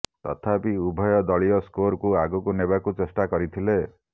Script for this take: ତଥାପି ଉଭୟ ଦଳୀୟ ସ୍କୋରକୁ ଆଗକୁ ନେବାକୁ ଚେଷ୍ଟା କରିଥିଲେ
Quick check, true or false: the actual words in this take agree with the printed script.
true